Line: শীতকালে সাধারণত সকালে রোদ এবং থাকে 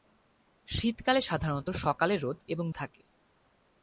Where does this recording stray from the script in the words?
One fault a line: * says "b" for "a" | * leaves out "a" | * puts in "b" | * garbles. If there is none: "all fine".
all fine